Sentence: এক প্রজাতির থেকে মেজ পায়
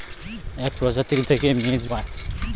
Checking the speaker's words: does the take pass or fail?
pass